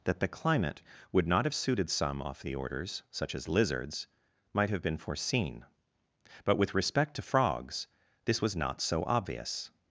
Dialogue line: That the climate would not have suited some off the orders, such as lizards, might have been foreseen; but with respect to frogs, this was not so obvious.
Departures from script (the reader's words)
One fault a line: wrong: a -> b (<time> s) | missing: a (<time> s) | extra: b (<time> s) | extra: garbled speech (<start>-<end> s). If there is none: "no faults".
no faults